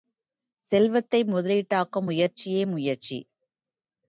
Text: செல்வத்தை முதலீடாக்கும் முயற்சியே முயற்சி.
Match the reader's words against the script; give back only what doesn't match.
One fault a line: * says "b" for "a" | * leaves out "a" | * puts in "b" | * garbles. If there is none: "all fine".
all fine